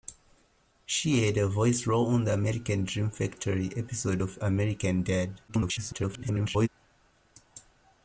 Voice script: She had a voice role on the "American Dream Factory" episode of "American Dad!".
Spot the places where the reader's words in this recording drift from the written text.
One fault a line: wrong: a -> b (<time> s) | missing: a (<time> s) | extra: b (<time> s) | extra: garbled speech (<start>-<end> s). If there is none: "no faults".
extra: garbled speech (5.5-6.7 s)